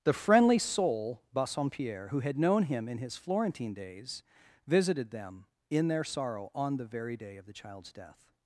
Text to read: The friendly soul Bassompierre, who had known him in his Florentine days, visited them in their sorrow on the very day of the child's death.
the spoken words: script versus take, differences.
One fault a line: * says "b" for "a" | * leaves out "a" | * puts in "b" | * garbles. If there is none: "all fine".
all fine